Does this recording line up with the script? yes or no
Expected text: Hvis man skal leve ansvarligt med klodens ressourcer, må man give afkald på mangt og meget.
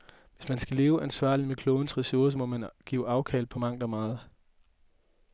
yes